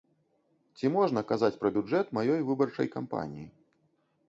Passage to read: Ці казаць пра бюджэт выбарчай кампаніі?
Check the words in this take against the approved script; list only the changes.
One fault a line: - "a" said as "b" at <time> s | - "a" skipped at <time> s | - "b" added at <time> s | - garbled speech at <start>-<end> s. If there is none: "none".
- "можна" added at 0.9 s
- "маёй" added at 2.2 s